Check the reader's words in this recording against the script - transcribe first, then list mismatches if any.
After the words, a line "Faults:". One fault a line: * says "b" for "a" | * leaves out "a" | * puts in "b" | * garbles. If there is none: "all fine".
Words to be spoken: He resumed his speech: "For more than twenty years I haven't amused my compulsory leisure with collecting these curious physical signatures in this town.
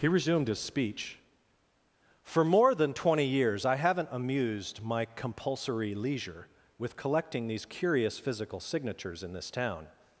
He resumed his speech: "For more than twenty years I haven't amused my compulsory leisure with collecting these curious physical signatures in this town.
Faults:
all fine